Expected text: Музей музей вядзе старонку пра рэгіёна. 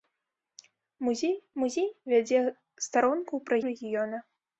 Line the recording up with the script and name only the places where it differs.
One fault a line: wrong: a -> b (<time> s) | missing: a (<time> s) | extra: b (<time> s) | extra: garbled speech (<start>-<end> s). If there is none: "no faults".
no faults